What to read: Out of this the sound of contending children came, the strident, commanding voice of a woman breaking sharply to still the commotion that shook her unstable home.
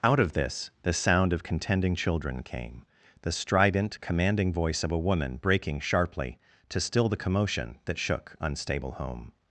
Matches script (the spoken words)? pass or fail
fail